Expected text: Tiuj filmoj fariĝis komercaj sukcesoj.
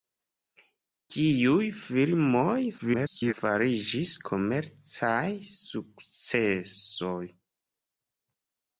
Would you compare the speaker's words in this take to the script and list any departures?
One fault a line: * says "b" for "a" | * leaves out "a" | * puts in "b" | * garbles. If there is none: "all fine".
* garbles